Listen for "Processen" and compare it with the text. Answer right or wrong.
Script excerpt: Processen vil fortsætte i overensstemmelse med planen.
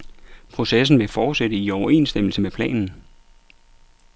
right